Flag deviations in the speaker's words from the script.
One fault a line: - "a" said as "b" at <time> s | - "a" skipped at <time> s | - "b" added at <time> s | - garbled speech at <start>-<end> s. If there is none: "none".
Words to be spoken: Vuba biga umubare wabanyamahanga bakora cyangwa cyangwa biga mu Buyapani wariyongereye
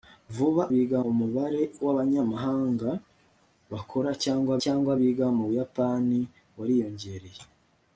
none